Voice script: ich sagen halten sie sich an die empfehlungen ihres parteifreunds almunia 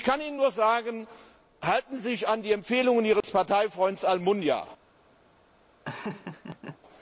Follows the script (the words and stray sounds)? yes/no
no